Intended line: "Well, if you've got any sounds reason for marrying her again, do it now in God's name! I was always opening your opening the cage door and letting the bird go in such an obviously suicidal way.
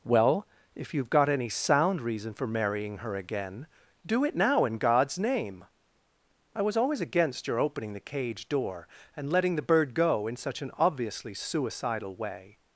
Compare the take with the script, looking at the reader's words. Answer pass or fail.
fail